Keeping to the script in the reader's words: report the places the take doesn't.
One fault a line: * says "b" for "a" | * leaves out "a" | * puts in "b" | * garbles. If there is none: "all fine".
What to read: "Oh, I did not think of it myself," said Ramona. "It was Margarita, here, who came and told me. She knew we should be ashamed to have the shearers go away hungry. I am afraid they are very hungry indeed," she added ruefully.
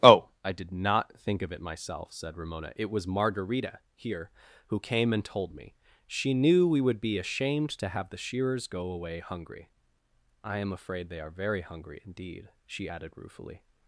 * says "would" for "should"